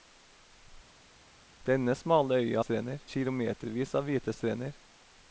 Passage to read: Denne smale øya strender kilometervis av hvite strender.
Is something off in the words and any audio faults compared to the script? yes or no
no